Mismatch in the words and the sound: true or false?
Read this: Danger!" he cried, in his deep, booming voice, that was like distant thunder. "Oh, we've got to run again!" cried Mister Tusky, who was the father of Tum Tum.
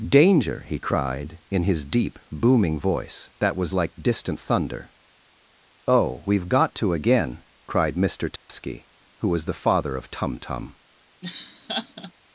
true